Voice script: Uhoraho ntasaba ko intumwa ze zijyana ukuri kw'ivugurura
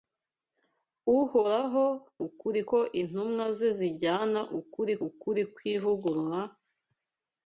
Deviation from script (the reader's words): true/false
true